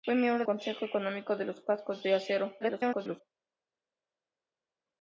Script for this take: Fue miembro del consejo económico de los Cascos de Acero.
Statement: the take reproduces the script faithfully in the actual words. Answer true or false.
false